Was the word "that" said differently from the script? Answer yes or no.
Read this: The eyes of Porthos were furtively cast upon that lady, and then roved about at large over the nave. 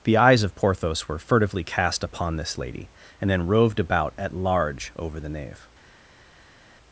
yes